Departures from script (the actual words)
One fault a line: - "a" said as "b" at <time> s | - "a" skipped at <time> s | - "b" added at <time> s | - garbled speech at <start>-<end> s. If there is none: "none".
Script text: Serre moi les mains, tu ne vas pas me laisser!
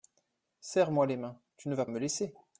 - "pas" skipped at 1.9 s